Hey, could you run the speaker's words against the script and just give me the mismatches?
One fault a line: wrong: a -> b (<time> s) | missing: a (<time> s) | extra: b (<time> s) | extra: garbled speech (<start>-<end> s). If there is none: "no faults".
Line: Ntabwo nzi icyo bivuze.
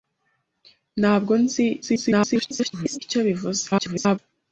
extra: garbled speech (1.8-3.0 s)
extra: garbled speech (3.7-4.2 s)